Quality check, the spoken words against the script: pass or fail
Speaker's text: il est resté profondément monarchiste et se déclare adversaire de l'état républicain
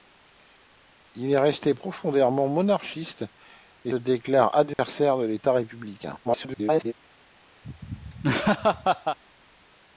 fail